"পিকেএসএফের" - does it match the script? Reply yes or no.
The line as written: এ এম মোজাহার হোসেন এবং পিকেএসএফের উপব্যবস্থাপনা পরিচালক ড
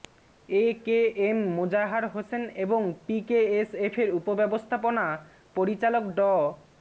yes